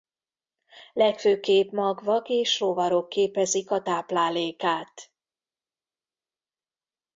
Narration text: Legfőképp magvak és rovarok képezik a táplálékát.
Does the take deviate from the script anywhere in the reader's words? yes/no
no